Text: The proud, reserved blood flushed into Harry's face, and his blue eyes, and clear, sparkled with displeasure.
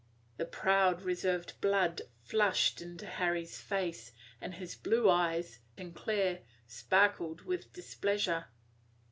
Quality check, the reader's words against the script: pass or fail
pass